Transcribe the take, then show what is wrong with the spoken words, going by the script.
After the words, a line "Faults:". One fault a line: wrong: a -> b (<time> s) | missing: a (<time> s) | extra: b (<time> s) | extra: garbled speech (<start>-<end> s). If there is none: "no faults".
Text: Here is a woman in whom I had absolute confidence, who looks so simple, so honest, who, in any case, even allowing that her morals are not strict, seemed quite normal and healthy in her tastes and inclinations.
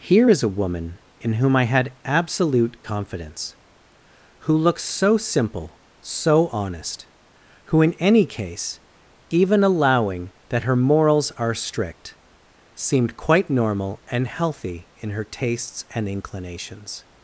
Here is a woman in whom I had absolute confidence, who looks so simple, so honest, who, in any case, even allowing that her morals are strict, seemed quite normal and healthy in her tastes and inclinations.
Faults:
missing: not (11.5 s)